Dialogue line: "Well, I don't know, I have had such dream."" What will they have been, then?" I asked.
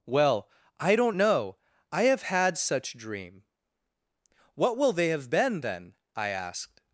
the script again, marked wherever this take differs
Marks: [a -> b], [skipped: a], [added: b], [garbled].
"Well, I don't know, I have had such dream."" What will they have been, then?" I asked.